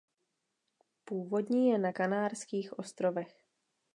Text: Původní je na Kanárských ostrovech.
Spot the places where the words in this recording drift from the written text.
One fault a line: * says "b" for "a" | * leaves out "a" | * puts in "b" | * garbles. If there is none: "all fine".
all fine